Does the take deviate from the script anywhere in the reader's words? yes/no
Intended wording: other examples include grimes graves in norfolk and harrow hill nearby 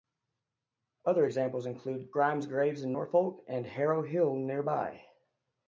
no